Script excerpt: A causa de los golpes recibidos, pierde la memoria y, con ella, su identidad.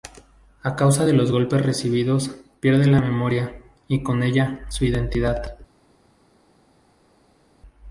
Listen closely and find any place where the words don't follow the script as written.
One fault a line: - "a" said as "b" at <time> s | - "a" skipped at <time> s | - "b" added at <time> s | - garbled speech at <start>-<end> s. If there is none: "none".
none